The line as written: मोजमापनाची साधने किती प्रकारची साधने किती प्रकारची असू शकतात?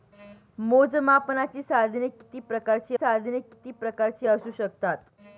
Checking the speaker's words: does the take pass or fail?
pass